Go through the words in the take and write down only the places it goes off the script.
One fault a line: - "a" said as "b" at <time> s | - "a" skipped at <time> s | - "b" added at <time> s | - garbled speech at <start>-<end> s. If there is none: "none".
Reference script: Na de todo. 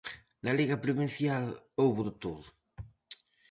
- "liga provincial houbo" added at 0.6 s